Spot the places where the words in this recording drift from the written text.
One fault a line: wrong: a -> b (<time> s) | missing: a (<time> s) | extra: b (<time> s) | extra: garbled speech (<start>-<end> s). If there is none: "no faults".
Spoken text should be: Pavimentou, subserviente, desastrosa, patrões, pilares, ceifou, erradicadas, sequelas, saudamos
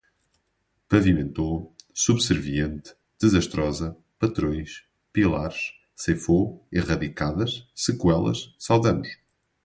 no faults